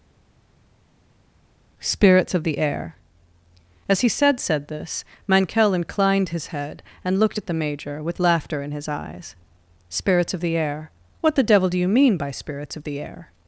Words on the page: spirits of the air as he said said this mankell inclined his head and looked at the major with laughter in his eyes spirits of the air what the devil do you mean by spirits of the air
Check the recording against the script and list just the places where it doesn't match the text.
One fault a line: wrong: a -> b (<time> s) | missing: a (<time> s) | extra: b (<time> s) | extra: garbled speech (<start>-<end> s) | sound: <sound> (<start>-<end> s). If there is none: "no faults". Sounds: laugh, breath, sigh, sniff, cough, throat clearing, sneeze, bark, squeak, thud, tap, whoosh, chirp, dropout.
no faults